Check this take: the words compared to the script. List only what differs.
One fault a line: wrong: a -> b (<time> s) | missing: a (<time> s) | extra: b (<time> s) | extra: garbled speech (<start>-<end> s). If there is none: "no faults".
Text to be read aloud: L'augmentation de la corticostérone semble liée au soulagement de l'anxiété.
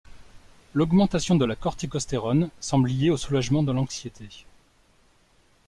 no faults